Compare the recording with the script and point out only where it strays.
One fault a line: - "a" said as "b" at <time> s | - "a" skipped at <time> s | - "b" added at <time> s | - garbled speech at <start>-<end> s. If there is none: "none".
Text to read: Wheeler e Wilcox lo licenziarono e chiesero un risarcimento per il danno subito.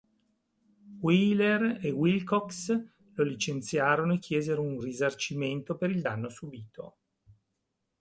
none